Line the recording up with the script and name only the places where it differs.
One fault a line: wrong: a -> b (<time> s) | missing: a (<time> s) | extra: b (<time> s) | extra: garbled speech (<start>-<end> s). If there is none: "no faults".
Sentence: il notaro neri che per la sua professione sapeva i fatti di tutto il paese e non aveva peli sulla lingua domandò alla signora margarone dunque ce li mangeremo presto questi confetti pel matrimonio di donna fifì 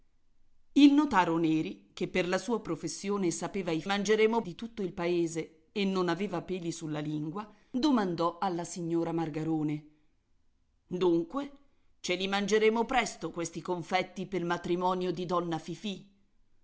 wrong: fatti -> mangeremo (3.9 s)